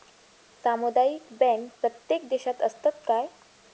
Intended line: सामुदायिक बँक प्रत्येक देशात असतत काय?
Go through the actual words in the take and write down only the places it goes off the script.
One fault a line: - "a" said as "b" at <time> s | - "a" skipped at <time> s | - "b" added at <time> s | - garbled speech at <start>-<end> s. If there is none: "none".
none